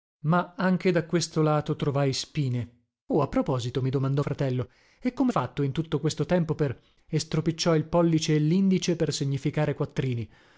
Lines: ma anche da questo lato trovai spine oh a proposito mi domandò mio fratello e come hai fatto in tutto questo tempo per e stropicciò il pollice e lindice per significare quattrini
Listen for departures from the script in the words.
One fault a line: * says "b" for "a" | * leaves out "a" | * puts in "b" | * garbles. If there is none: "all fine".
* leaves out "mio"
* leaves out "hai"